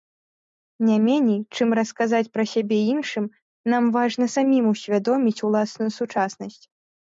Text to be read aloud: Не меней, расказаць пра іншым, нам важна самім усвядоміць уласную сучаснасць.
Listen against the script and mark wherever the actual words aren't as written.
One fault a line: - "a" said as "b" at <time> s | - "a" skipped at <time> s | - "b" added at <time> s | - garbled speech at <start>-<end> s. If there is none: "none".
- "чым" added at 1.6 s
- "сябе" added at 2.5 s